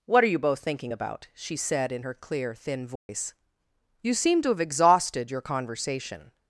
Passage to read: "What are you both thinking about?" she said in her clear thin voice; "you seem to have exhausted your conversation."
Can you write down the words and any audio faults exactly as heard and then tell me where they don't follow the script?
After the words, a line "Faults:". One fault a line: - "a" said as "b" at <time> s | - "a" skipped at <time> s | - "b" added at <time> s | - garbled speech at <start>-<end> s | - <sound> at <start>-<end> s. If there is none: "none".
"What are you both thinking about?" she said in her clear thin voice; "you seem to have exhausted your conversation."
Faults:
- dropout at 3.0-3.1 s